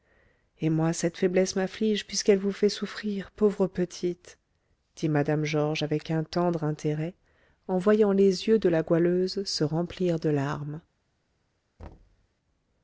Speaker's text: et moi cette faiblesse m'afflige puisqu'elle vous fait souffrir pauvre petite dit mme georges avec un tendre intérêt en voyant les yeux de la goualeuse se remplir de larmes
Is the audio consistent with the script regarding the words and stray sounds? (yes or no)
no